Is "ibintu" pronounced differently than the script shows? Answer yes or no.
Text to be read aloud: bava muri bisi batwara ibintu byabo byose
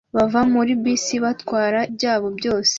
yes